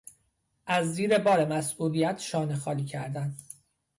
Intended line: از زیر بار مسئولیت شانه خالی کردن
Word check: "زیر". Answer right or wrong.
right